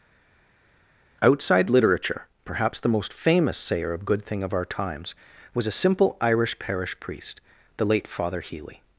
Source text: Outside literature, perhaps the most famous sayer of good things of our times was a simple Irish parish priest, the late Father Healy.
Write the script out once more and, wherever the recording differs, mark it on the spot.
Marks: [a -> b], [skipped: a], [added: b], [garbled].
Outside literature, perhaps the most famous sayer of good [things -> thing] of our times was a simple Irish parish priest, the late Father Healy.